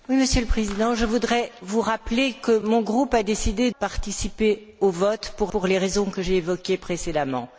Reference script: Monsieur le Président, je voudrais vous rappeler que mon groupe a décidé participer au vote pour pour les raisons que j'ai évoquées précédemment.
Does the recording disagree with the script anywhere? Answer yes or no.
no